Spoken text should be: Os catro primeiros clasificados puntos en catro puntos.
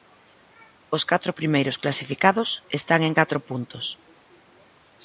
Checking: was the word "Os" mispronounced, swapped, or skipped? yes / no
no